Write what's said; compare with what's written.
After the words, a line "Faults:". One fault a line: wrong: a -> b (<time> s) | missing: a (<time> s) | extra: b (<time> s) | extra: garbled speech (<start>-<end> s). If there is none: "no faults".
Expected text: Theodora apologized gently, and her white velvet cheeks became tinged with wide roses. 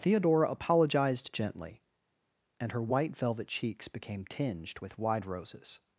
Theodora apologized gently, and her white velvet cheeks became tinged with wide roses.
Faults:
no faults